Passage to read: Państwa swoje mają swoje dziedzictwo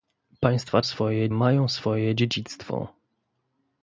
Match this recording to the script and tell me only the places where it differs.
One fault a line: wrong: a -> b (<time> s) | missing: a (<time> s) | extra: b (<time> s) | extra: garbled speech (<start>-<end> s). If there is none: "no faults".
no faults